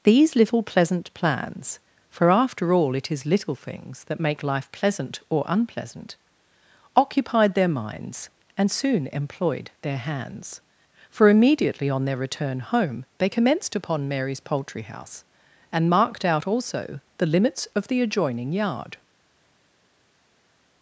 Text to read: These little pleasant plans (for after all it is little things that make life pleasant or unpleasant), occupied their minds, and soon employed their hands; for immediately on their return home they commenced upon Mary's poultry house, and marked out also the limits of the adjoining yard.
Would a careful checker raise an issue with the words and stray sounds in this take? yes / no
no